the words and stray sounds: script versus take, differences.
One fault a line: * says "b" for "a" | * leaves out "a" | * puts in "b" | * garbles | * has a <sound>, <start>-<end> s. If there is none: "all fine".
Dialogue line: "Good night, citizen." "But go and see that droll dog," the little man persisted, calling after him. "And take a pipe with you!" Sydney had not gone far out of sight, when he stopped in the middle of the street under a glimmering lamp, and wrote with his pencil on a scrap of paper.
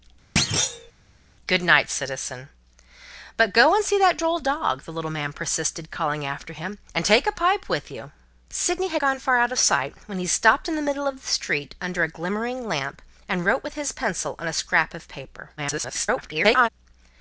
* has a thud, 0.4-0.9 s
* leaves out "not"
* garbles